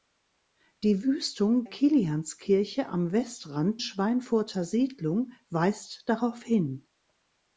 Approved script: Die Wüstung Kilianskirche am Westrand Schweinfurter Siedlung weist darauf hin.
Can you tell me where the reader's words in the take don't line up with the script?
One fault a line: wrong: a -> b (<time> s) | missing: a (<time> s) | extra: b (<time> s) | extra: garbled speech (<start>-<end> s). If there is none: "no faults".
no faults